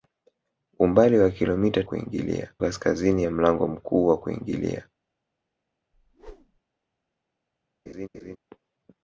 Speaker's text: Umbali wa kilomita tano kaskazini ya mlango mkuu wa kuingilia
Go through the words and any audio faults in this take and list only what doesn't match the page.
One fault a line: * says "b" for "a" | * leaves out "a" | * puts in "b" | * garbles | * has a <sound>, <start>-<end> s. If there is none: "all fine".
* says "kuingilia" for "tano"
* has a whoosh, 5.9-6.6 s
* has a laugh, 7.9-8.4 s